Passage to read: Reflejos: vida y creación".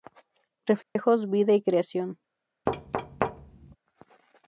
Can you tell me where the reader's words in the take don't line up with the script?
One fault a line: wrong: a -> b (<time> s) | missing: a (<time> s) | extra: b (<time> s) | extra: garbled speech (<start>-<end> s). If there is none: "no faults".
no faults